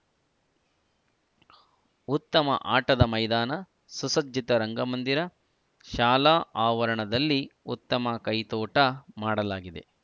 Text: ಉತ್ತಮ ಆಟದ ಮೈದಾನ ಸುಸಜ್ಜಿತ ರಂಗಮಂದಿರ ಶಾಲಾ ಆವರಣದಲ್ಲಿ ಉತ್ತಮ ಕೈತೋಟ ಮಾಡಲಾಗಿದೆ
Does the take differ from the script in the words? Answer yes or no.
no